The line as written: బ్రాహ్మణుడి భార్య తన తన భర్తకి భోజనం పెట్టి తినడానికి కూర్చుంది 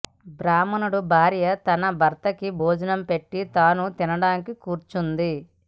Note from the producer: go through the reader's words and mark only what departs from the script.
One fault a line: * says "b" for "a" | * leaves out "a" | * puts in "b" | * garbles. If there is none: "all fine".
* leaves out "తన"
* puts in "తాను"